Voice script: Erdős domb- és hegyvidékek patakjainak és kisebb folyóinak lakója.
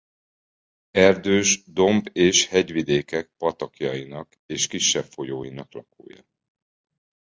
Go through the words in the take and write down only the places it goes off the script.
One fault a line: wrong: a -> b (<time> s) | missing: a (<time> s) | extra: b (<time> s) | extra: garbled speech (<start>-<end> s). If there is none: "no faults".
no faults